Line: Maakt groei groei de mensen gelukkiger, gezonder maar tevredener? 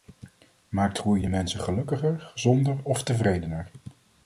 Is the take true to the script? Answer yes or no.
no